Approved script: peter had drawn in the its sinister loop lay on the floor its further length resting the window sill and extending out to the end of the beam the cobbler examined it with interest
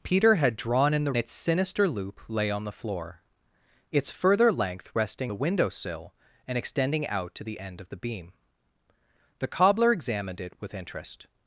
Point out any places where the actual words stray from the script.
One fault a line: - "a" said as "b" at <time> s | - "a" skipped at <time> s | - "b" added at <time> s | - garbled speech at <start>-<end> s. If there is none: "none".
none